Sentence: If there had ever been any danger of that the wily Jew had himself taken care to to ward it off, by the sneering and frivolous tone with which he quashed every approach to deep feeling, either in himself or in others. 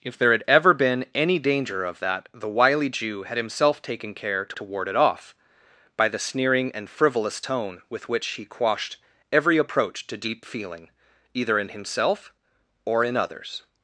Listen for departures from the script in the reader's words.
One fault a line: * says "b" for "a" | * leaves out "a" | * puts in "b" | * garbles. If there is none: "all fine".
all fine